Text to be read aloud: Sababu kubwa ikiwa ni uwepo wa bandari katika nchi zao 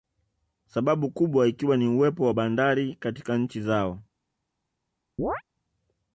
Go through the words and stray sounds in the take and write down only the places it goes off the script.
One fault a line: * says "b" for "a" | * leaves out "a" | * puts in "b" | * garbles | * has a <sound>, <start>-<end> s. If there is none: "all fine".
* has a chirp, 5.2-5.4 s